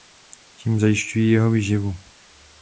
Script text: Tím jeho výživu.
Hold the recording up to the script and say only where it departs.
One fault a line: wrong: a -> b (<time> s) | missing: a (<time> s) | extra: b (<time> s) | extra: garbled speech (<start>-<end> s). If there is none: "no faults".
extra: zajišťují (0.8 s)